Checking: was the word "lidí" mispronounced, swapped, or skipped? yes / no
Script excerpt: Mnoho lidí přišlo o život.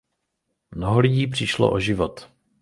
no